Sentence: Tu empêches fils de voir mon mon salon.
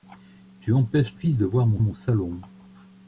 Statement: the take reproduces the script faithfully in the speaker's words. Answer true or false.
true